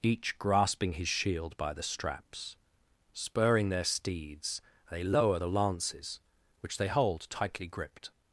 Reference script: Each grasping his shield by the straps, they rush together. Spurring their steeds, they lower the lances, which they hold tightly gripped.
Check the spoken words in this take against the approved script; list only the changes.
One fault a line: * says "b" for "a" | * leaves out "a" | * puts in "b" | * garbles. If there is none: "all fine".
* leaves out "they rush together"